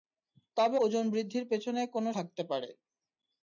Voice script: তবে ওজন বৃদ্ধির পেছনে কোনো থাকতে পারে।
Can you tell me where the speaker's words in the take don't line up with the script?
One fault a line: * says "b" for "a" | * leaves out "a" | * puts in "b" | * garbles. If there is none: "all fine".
all fine